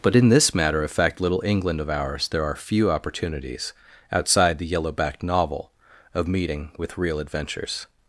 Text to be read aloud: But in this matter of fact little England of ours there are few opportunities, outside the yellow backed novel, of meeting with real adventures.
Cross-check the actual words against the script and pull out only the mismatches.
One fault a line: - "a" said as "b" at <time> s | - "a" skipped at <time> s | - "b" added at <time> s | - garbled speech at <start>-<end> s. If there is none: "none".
none